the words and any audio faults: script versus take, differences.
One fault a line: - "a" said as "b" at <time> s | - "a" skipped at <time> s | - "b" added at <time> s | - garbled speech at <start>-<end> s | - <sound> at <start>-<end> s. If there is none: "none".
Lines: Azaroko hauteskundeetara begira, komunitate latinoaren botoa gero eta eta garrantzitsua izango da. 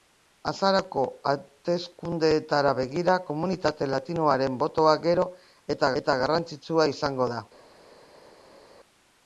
none